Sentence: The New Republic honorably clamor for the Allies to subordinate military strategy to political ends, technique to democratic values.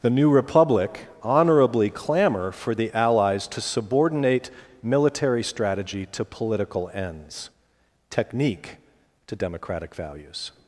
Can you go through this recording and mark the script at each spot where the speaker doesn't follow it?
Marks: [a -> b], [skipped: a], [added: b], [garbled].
The New Republic honorably clamor for the Allies to subordinate military strategy to political ends, technique to democratic values.